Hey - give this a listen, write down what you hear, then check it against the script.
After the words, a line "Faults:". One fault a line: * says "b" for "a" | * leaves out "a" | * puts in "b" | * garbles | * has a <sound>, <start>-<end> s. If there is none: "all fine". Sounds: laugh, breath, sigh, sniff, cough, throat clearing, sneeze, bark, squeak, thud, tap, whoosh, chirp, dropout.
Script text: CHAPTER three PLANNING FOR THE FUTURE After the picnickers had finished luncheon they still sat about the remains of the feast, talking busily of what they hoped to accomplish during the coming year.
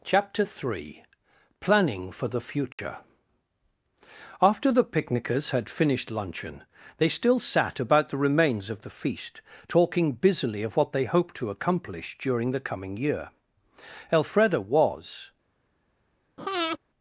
CHAPTER three PLANNING FOR THE FUTURE After the picnickers had finished luncheon they still sat about the remains of the feast, talking busily of what they hoped to accomplish during the coming year. Elfreda was
Faults:
* has a dropout, 2.7-2.8 s
* puts in "Elfreda was"
* has a breath, 16.4-16.8 s